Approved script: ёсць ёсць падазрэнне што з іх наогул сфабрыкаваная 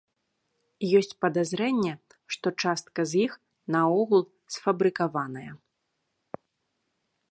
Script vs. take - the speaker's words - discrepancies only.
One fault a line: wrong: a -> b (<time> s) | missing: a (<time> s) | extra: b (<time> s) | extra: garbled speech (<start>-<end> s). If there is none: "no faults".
missing: ёсць (1.1 s)
extra: частка (2.6 s)